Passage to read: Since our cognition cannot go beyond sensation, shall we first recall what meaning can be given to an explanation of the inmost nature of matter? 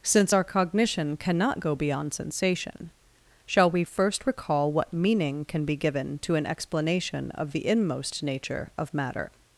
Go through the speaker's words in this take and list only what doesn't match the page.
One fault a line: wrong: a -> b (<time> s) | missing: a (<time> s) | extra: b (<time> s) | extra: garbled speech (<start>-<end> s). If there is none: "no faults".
no faults